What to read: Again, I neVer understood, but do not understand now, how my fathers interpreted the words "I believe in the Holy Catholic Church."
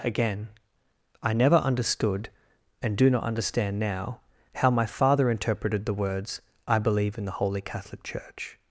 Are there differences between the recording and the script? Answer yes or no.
yes